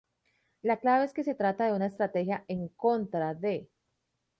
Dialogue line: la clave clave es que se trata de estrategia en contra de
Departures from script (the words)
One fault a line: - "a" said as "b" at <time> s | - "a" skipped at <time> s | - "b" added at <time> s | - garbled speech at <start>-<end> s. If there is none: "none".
- "clave" skipped at 1.1 s
- "una" added at 1.7 s